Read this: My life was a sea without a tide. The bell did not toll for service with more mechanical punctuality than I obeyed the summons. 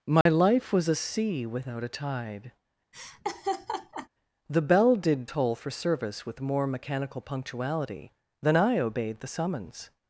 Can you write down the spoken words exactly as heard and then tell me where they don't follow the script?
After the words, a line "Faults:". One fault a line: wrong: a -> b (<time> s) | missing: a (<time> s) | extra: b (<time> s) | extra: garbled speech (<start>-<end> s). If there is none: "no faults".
My life was a sea without a tide. The bell did toll for service with more mechanical punctuality than I obeyed the summons.
Faults:
missing: not (5.3 s)